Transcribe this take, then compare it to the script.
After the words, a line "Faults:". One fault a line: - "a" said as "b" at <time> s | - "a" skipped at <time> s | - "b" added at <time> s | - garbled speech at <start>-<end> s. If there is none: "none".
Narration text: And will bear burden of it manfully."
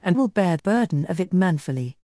And will bear burden of it manfully."
Faults:
none